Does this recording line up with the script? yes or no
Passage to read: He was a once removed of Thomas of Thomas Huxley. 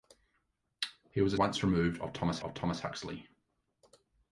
yes